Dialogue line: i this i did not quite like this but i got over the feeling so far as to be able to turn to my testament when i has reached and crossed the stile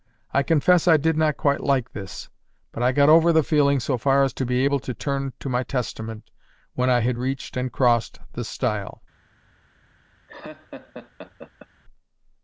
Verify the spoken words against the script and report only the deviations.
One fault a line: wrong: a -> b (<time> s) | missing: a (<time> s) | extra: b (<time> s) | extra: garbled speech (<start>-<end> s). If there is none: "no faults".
wrong: this -> confess (0.4 s)
wrong: has -> had (7.0 s)